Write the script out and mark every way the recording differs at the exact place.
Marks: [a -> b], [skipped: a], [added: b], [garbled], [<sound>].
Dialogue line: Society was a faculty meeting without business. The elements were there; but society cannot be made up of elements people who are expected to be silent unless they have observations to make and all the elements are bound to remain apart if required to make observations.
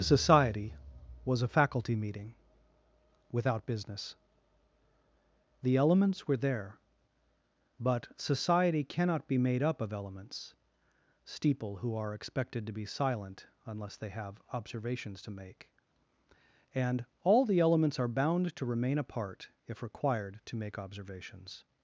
Society was a faculty meeting without business. The elements were there; but society cannot be made up of elements [people -> steeple] who are expected to be silent unless they have observations to make and all the elements are bound to remain apart if required to make observations.